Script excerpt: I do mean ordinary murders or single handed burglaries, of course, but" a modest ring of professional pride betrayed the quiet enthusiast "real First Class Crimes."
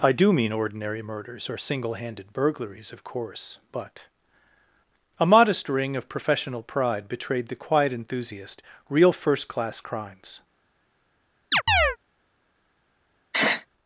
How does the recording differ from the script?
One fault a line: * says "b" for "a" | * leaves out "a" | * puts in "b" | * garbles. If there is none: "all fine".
all fine